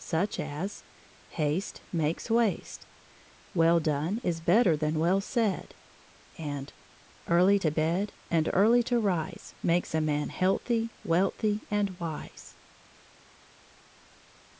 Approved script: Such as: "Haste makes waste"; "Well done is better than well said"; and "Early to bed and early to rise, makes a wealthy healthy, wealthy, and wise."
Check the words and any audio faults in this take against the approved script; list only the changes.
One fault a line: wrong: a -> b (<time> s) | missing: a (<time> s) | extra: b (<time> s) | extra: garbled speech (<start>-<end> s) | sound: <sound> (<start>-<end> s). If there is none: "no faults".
wrong: wealthy -> man (10.0 s)